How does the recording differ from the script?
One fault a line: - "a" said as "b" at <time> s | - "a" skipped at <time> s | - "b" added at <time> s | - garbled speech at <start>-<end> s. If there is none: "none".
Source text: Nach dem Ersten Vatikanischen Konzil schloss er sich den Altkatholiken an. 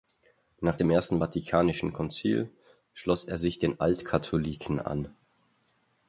none